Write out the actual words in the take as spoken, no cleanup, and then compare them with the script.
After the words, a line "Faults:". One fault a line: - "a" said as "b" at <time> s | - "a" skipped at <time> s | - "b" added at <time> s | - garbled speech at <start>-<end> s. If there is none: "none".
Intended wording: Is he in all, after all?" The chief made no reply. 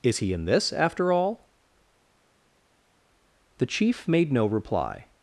Is he in this, after all?" The chief made no reply.
Faults:
- "all" said as "this" at 0.5 s